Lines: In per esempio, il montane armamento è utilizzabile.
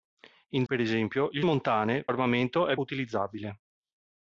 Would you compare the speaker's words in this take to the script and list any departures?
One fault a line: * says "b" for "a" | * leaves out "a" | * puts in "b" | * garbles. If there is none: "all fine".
all fine